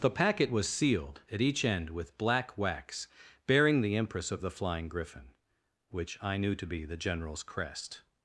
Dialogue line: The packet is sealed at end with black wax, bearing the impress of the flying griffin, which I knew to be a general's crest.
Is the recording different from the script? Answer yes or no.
yes